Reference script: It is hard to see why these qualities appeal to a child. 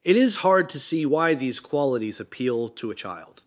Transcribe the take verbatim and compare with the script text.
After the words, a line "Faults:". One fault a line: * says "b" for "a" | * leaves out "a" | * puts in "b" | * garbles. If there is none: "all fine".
It is hard to see why these qualities appeal to a child.
Faults:
all fine